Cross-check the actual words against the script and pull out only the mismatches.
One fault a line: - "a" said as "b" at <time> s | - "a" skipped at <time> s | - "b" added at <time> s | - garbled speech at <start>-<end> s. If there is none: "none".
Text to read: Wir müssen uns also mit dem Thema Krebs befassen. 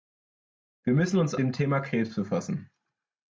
- "also mit" skipped at 1.4 s